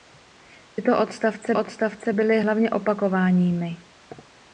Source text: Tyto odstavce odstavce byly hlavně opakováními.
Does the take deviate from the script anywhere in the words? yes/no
no